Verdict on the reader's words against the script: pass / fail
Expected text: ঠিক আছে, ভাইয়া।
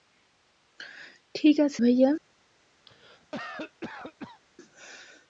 pass